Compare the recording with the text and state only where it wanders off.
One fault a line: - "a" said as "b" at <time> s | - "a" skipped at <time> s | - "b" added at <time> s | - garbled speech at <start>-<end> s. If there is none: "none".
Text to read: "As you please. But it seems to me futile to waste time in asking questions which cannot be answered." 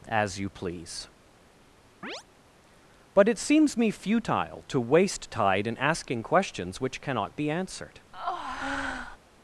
- "to" skipped at 3.8 s
- "time" said as "tide" at 5.3 s